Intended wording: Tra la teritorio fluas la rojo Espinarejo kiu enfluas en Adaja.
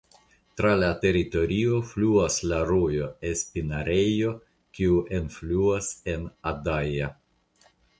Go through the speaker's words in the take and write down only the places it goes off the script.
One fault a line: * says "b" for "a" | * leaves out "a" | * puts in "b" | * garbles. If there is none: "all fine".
all fine